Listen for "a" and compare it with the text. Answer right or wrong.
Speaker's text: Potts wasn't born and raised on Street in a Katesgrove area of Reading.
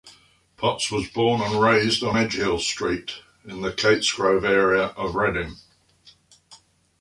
wrong